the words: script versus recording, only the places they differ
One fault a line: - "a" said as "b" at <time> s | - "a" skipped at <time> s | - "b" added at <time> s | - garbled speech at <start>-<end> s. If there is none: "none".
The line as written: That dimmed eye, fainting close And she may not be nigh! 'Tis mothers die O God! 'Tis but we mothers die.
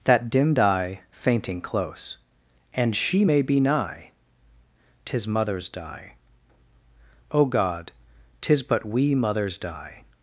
- "not" skipped at 3.4 s